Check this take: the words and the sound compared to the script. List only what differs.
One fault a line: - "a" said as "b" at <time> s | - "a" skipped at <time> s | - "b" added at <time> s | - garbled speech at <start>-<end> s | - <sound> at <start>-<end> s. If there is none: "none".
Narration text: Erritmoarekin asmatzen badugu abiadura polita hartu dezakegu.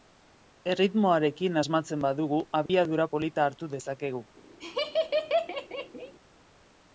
- dropout at 2.7-2.7 s
- laugh at 4.6-6.1 s